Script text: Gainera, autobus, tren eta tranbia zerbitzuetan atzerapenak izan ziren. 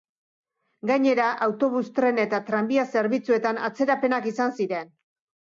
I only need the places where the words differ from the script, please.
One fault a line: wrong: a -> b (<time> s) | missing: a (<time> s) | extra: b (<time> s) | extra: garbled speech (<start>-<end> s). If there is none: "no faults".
no faults